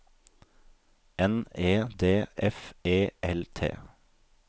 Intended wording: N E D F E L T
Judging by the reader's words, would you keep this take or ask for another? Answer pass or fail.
pass